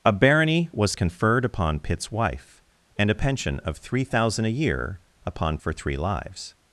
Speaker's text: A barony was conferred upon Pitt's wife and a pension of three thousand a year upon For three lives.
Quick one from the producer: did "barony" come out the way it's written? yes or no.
yes